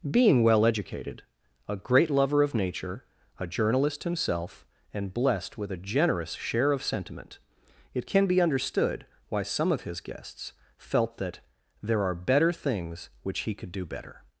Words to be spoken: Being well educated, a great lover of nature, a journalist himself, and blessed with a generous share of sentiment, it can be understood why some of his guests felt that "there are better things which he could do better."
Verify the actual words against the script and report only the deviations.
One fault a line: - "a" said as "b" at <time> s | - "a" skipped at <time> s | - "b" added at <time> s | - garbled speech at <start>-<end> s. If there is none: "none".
none